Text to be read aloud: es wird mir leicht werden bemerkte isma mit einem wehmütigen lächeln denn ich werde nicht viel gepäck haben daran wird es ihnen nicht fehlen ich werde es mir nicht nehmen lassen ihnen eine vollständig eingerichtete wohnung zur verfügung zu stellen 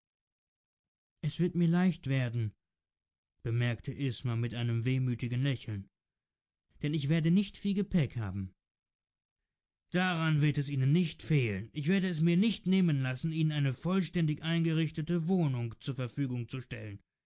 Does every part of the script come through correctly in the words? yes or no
yes